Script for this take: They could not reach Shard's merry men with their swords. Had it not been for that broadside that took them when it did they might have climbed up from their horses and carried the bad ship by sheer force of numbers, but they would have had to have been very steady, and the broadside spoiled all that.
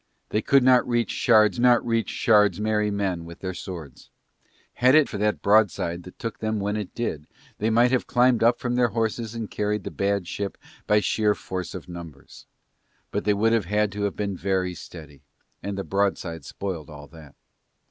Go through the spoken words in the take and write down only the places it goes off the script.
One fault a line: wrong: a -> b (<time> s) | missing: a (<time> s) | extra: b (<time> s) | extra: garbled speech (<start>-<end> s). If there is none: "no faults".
extra: not reach Shard's (1.6 s)
missing: not been (5.1 s)